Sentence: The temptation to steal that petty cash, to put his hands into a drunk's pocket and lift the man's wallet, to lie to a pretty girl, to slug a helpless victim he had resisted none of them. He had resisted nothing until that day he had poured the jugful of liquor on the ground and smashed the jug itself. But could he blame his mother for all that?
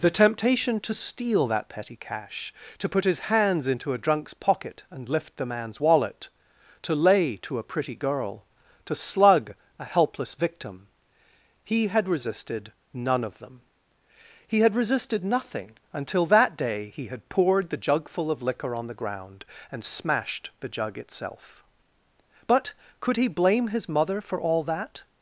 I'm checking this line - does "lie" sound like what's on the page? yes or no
no